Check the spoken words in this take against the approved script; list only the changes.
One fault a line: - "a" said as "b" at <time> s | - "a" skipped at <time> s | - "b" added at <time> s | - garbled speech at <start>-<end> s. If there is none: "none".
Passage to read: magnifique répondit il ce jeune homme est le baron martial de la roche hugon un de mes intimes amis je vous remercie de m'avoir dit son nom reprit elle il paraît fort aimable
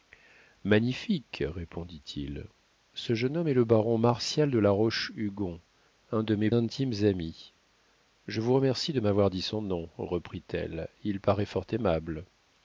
none